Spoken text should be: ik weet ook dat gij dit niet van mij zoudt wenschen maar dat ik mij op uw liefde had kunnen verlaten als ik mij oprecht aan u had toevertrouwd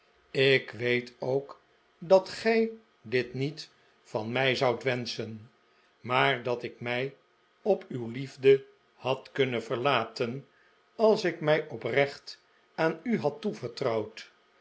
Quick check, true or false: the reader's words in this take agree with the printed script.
true